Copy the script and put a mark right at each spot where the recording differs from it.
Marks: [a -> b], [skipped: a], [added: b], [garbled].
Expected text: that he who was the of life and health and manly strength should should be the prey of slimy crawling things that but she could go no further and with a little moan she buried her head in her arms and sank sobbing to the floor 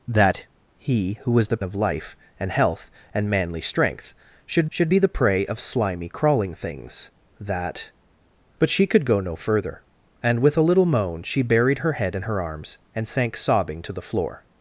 that he who was the of life and health and manly strength should should be the prey of slimy crawling things that but she could go no further and with a little moan she buried her head in her arms and sank sobbing to the floor